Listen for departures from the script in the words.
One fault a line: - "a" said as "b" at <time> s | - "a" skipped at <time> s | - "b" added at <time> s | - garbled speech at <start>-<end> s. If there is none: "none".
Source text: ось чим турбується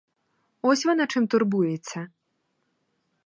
- "вона" added at 0.8 s